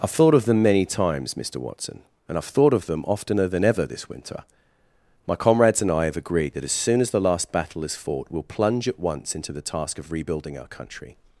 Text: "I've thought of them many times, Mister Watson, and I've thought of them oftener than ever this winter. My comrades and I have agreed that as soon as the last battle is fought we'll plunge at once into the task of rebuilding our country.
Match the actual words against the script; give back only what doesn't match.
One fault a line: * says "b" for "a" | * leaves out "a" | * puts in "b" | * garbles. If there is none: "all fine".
all fine